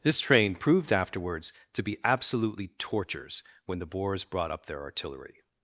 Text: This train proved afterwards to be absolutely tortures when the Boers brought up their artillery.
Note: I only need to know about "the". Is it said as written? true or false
true